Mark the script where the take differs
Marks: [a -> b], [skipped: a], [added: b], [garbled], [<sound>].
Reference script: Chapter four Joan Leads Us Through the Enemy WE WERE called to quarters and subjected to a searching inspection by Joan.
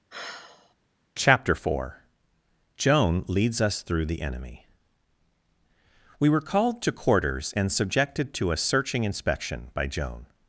[sigh] Chapter four Joan Leads Us Through the Enemy WE WERE called to quarters and subjected to a searching inspection by Joan.